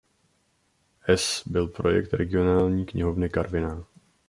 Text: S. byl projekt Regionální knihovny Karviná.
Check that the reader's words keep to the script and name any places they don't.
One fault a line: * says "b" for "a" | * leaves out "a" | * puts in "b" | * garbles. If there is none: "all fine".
all fine